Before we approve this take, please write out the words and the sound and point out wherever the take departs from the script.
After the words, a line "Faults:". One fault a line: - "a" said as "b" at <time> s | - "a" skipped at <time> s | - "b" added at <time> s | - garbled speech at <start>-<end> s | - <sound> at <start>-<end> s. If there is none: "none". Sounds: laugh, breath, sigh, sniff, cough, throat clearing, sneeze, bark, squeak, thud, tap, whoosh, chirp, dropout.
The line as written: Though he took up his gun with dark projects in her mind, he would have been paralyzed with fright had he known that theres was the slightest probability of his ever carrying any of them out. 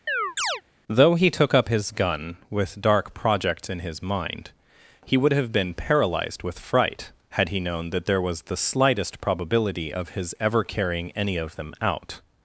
Though he took up his gun with dark projects in his mind, he would have been paralyzed with fright had he known that there was the slightest probability of his ever carrying any of them out.
Faults:
- chirp at 0.1-0.6 s
- "her" said as "his" at 3.8 s
- "theres" said as "there" at 8.1 s